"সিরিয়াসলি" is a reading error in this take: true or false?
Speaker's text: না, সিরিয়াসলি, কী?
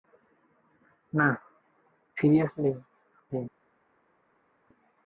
false